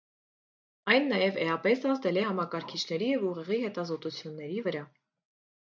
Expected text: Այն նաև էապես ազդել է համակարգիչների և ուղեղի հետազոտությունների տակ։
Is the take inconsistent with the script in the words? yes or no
yes